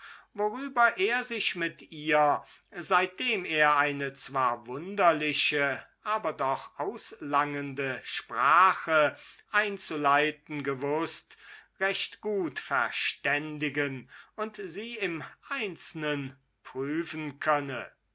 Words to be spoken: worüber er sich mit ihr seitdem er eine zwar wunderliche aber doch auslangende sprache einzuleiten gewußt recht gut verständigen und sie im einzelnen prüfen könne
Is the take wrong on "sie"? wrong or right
right